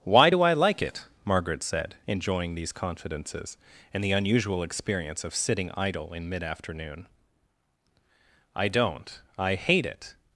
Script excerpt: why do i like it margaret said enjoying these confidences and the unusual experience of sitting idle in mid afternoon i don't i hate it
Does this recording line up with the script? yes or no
yes